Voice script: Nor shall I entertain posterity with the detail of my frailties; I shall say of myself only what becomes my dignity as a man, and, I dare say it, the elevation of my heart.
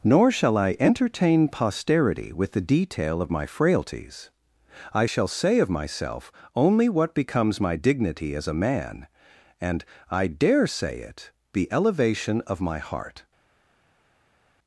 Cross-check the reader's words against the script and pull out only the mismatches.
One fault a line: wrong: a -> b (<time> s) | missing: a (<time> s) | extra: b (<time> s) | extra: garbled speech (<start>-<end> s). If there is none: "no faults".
no faults